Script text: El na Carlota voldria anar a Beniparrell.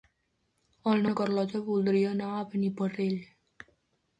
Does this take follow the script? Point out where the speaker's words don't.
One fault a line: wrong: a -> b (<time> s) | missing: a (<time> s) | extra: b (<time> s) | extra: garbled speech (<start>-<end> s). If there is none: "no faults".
no faults